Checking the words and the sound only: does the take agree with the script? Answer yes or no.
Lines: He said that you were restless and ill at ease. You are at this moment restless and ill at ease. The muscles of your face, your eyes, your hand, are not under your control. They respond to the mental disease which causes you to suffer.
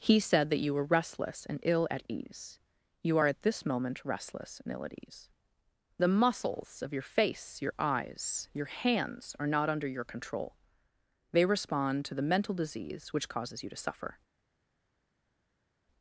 no